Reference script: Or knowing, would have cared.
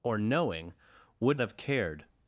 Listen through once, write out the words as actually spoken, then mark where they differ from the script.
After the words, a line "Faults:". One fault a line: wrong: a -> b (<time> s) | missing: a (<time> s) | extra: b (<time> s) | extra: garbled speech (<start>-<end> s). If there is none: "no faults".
Or knowing, would have cared.
Faults:
no faults